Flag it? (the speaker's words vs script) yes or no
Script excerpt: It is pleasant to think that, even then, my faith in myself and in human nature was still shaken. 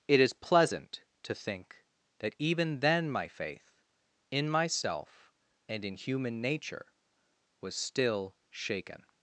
no